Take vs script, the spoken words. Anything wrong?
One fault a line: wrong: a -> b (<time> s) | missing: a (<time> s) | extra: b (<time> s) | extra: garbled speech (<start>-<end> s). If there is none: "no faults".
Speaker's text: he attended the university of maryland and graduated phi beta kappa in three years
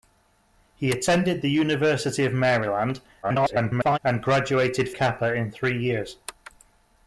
extra: garbled speech (3.2-4.0 s)
missing: phi beta (4.9 s)